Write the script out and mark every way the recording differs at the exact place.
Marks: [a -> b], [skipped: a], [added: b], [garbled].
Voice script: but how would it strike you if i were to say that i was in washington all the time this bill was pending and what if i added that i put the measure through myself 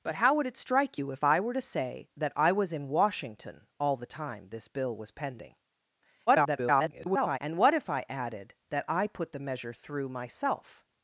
but how would it strike you if i were to say that i was in washington all the time this bill was pending [garbled] and what if i added that i put the measure through myself